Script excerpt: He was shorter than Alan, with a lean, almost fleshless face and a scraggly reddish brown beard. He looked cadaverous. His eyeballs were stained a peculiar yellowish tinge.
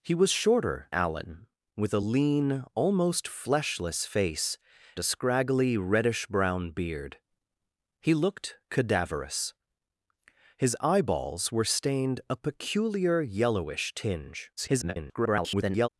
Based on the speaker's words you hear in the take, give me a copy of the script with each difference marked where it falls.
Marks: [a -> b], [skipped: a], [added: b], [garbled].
He was shorter [skipped: than] Alan, with a lean, almost fleshless face [skipped: and] a scraggly reddish brown beard. He looked cadaverous. His eyeballs were stained a peculiar yellowish tinge. [garbled]